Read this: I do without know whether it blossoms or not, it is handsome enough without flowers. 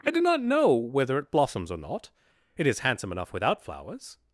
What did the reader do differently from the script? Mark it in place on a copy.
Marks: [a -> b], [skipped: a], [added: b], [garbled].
I do [without -> not] know whether it blossoms or not, it is handsome enough without flowers.